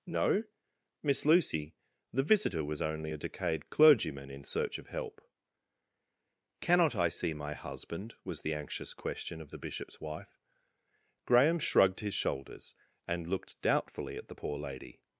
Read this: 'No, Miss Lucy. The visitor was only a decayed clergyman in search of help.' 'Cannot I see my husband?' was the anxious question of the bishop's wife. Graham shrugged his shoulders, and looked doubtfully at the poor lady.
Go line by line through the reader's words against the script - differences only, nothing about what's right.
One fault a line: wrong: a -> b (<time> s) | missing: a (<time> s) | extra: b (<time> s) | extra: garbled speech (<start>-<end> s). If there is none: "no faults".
no faults